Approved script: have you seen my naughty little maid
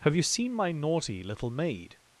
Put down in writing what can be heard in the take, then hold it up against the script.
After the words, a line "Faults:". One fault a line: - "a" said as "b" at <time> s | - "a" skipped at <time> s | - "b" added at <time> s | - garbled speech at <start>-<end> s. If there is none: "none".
have you seen my naughty little maid
Faults:
none